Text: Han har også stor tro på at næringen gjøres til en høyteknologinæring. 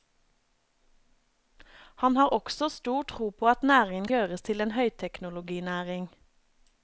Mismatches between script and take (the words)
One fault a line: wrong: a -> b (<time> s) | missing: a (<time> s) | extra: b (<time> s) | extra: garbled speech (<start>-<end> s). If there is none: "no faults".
no faults